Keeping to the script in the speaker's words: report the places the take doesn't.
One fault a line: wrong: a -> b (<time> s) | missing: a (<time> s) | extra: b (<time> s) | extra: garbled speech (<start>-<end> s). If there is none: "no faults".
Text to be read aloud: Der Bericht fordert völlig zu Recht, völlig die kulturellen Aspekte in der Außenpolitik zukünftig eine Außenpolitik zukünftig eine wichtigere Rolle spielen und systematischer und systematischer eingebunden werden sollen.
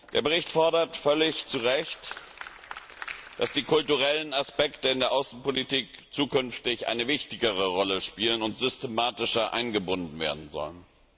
wrong: völlig -> dass (3.4 s)
missing: Außenpolitik zukünftig eine (7.1 s)
missing: und systematischer (9.5 s)